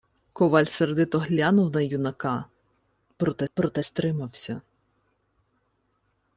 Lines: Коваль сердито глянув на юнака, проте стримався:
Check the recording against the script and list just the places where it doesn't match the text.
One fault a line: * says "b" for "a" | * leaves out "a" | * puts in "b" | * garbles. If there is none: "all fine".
* puts in "проте"